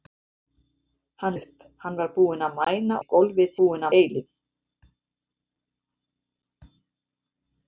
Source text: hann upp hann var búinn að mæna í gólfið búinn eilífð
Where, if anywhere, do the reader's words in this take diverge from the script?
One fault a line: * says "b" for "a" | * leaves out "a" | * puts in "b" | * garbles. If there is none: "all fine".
all fine